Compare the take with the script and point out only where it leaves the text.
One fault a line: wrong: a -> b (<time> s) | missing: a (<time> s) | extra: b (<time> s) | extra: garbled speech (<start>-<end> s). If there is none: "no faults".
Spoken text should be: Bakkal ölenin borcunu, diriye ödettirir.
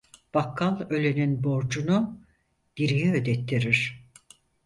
no faults